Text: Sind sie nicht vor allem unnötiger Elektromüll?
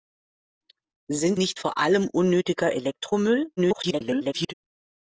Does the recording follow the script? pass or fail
fail